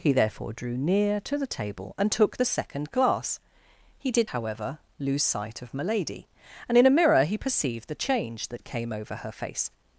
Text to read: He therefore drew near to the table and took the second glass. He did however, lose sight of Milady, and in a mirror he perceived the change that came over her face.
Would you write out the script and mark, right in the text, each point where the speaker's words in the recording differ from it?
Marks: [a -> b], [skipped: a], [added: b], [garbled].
He therefore drew near to the table and took the second glass. He did however, lose sight of Milady, and in a mirror he perceived the change that came over her face.